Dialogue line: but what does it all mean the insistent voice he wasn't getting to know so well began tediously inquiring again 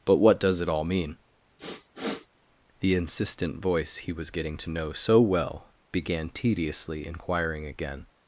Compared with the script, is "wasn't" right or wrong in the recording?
wrong